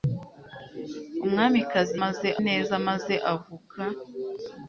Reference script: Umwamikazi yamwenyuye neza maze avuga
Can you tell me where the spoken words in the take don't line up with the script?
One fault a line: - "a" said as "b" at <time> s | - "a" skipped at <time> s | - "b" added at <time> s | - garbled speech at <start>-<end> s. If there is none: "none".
- "yamwenyuye" said as "maze" at 2.0 s